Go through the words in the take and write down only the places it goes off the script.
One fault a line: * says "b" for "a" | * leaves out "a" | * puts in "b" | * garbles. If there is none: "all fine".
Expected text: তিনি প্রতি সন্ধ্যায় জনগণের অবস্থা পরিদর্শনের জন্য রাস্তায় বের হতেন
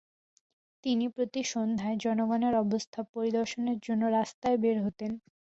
all fine